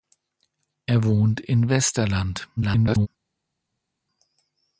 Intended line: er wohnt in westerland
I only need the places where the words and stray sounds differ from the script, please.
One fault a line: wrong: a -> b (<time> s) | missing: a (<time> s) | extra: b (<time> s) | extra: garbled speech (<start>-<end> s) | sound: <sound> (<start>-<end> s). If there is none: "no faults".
extra: garbled speech (2.6-3.1 s)